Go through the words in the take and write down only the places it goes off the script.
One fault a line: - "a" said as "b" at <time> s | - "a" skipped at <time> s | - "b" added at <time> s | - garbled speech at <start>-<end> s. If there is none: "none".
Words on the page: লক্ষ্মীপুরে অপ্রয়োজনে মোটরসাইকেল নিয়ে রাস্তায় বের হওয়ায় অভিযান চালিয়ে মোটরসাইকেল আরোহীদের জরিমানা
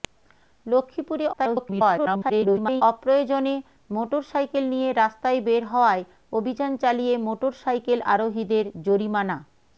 - garbled speech at 1.3-2.8 s